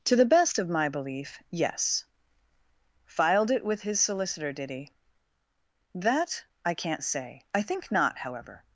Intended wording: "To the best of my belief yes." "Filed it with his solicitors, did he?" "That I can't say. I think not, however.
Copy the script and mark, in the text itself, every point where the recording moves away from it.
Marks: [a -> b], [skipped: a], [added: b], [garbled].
"To the best of my belief yes." "Filed it with his [solicitors, -> solicitor] did he?" "That I can't say. I think not, however.